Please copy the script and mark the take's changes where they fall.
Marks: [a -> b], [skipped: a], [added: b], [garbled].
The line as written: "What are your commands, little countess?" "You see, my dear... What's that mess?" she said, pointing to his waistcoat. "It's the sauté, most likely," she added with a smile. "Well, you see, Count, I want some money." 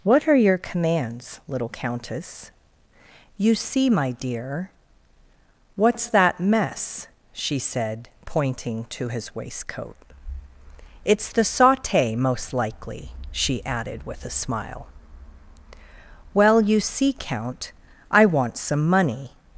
"What are your commands, little countess?" "You see, my dear... What's that mess?" she said, pointing to his waistcoat. "It's the sauté, most likely," she added with a smile. "Well, you see, Count, I want some money."